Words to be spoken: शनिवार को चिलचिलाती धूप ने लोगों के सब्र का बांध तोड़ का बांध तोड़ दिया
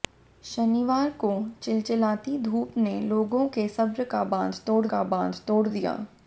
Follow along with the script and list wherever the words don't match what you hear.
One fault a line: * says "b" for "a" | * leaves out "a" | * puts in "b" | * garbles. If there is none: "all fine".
all fine